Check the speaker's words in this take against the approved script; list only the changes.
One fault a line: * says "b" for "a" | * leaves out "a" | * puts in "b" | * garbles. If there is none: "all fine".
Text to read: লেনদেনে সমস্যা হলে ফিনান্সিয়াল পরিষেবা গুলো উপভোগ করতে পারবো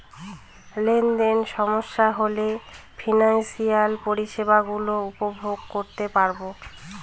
all fine